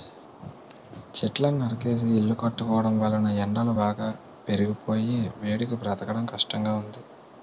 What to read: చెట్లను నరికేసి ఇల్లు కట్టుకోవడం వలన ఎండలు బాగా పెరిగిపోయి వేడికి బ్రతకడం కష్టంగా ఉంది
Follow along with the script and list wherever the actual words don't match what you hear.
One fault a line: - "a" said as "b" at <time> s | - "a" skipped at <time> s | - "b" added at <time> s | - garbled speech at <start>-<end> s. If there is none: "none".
none